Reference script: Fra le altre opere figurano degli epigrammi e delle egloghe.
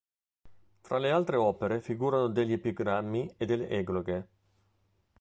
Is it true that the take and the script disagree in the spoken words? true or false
false